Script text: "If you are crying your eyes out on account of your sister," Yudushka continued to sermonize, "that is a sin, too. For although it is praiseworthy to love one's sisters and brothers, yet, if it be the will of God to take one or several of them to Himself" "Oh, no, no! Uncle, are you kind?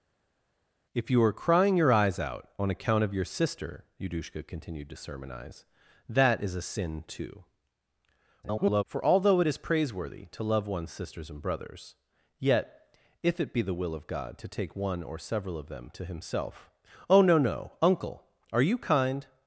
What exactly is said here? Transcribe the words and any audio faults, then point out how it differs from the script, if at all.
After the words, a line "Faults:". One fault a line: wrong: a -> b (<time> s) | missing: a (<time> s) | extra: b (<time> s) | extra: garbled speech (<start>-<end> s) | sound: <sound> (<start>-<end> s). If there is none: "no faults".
"If you are crying your eyes out on account of your sister," Yudushka continued to sermonize, "that is a sin, too. [garbled] For although it is praiseworthy to love one's sisters and brothers, yet, if it be the will of God to take one or several of them to Himself" "Oh, no, no! Uncle, are you kind?
Faults:
extra: garbled speech (8.4-8.8 s)